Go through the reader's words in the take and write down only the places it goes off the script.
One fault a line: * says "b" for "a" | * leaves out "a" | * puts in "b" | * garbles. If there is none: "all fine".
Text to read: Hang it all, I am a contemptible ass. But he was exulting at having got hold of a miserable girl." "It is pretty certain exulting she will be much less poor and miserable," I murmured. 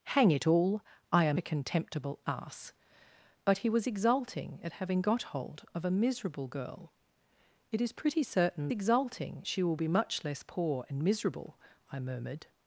all fine